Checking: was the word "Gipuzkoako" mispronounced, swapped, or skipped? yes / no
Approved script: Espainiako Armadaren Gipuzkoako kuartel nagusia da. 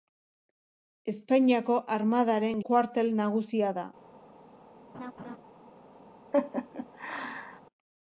yes